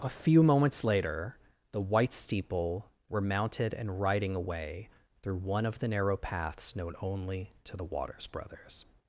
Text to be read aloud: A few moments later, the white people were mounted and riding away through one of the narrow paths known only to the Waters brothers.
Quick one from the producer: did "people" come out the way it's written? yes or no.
no